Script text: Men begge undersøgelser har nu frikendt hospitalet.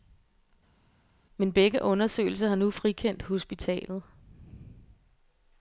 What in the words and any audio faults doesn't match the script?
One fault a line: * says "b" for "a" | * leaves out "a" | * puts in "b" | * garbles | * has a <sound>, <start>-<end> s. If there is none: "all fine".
all fine